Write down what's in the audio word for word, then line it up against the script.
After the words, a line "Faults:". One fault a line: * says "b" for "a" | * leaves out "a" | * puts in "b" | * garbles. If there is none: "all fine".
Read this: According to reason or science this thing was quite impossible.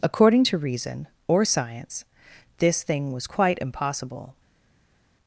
According to reason or science this thing was quite impossible.
Faults:
all fine